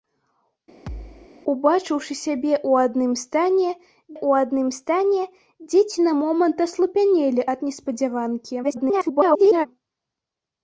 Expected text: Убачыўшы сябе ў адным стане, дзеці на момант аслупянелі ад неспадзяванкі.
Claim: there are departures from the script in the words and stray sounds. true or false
true